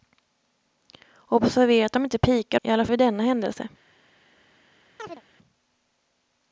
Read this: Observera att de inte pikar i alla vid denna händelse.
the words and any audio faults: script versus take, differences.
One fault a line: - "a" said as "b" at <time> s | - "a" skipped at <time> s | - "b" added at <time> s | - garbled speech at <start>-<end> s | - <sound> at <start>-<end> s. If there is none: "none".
- chirp at 5.0-5.2 s